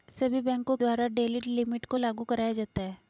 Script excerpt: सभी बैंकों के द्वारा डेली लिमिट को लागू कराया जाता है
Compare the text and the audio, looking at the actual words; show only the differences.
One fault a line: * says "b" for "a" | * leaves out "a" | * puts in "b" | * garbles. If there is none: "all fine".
* leaves out "के"